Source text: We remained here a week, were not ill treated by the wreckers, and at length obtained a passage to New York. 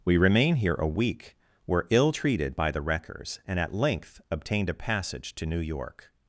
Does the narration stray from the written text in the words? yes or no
yes